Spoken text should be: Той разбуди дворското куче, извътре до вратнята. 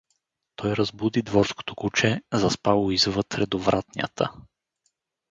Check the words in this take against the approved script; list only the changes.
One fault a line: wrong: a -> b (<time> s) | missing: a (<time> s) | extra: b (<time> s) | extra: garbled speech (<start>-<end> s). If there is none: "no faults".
extra: заспало (2.3 s)